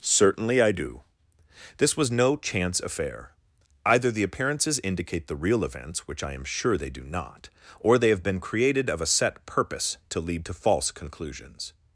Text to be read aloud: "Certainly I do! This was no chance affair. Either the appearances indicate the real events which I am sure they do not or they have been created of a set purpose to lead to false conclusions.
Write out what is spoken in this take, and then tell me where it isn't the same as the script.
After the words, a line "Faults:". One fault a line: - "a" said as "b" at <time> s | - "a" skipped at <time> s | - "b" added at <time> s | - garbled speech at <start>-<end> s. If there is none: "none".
"Certainly I do! This was no chance affair. Either the appearances indicate the real events which I am sure they do not or they have been created of a set purpose to lead to false conclusions.
Faults:
none